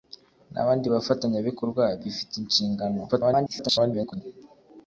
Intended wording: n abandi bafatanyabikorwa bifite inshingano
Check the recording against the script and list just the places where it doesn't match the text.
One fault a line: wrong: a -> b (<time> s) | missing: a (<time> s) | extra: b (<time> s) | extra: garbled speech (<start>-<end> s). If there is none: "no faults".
extra: garbled speech (3.1-4.2 s)